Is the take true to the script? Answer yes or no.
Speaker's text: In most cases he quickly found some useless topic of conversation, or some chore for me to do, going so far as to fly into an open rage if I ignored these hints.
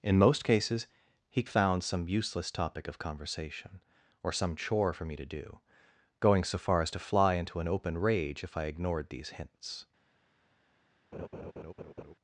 no